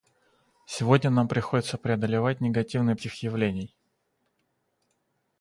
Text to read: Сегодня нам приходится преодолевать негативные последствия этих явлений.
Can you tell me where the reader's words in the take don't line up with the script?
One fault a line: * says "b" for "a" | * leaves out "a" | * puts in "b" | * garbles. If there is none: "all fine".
* leaves out "последствия"